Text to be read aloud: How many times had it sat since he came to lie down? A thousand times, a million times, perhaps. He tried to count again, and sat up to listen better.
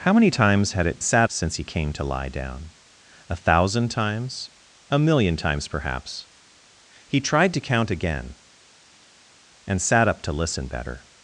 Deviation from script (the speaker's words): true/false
false